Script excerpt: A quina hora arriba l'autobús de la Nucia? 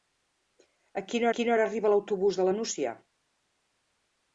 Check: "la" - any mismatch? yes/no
no